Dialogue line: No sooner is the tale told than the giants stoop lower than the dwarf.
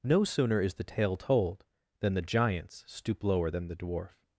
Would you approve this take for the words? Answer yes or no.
yes